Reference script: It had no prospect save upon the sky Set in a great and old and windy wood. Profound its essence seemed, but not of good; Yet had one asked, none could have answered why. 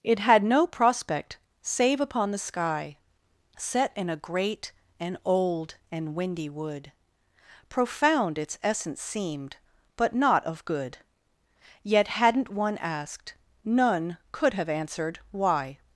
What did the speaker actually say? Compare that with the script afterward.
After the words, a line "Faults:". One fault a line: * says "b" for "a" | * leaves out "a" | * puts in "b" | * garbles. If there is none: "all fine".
It had no prospect save upon the sky Set in a great and old and windy wood. Profound its essence seemed, but not of good; Yet hadn't one asked, none could have answered why.
Faults:
* says "hadn't" for "had"